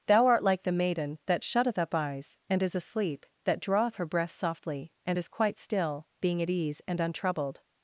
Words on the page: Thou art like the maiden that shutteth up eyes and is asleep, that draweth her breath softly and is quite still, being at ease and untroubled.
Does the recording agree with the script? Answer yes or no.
yes